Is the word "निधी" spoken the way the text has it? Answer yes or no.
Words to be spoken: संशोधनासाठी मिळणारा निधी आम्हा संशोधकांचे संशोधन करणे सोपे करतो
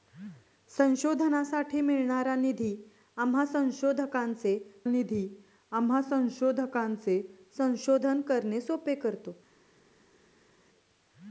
yes